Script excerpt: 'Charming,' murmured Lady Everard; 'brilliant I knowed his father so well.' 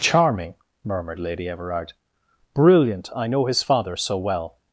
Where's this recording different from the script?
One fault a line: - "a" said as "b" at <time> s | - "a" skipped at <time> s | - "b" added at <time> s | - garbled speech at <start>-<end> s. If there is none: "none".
- "knowed" said as "know" at 3.3 s